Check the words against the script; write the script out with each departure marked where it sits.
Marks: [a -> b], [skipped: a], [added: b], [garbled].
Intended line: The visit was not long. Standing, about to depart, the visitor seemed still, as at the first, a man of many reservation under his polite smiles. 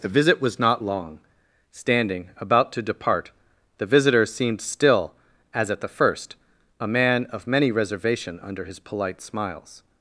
The visit was not long. Standing, about to depart, the visitor seemed still, as at the first, a man of many reservation under his polite smiles.